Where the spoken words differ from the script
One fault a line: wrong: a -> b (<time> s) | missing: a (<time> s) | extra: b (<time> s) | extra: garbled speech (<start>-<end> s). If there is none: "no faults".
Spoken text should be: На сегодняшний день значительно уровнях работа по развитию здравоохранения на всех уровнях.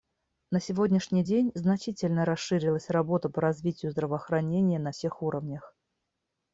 wrong: уровнях -> расширилась (2.2 s)